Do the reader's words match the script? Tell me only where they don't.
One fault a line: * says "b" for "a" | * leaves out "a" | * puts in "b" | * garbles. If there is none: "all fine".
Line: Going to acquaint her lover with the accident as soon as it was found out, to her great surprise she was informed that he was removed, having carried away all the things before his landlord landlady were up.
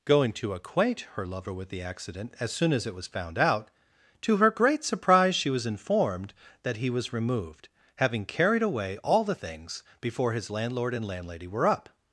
* puts in "and"